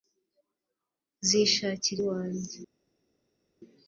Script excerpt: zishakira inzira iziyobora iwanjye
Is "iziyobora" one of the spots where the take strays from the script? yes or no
yes